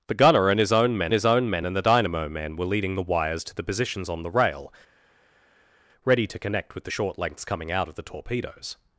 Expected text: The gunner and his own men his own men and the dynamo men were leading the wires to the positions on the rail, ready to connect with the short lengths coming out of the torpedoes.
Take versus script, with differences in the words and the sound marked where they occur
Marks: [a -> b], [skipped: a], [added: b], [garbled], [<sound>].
The gunner and his own men his own men and the dynamo men were leading the wires to the positions on the rail, ready to connect with the short lengths coming out of the torpedoes.